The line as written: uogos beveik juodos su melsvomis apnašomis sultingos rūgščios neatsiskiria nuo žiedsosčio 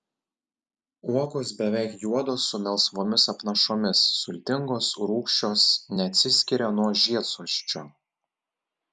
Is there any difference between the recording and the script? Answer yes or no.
no